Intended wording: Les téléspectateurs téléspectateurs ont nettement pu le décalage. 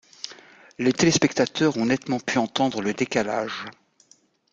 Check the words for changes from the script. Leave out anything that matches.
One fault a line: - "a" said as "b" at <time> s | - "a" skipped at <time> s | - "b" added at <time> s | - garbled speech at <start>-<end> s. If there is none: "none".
- "téléspectateurs" skipped at 1.8 s
- "entendre" added at 2.4 s